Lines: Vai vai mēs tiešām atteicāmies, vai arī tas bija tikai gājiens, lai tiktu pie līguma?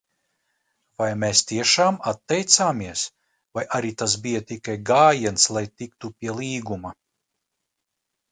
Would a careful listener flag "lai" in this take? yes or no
no